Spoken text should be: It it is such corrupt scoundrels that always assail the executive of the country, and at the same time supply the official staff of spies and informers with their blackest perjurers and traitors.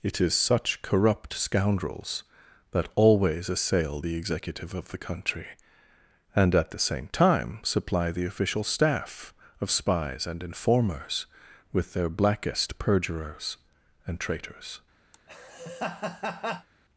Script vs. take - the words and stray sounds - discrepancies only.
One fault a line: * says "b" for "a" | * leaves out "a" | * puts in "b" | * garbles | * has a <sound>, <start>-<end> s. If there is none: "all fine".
* leaves out "it"
* has a laugh, 15.1-16.7 s